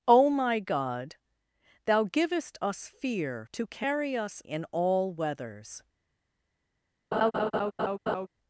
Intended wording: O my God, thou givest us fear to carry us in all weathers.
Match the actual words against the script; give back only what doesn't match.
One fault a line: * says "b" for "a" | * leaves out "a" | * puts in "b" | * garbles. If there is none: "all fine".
all fine